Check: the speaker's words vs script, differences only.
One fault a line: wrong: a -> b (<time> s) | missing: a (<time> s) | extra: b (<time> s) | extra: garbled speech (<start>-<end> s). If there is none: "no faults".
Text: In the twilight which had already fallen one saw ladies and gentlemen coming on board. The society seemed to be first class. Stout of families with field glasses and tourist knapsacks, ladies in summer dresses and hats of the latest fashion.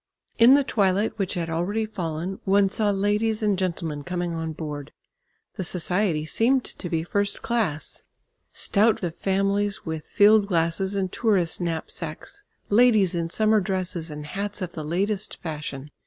no faults